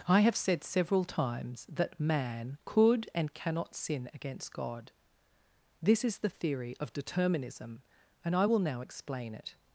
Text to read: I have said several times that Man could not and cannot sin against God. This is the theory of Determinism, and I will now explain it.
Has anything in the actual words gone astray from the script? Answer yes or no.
yes